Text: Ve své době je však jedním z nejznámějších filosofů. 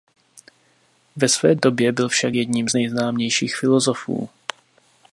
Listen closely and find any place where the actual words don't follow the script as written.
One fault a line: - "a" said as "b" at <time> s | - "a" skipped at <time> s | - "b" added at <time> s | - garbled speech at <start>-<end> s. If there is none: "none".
- "je" said as "byl" at 1.9 s